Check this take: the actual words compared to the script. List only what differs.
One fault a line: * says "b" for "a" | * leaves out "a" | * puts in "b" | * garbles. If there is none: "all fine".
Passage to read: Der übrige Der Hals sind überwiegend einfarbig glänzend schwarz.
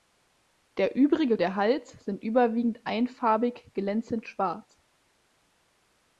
all fine